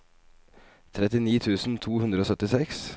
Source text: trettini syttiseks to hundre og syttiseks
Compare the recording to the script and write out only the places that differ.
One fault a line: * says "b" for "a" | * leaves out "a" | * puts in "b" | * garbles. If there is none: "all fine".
* says "tusen" for "syttiseks"